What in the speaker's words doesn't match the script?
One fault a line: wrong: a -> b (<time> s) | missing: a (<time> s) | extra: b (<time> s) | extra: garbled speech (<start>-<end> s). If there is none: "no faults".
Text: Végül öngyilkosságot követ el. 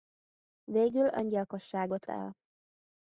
missing: követ (2.1 s)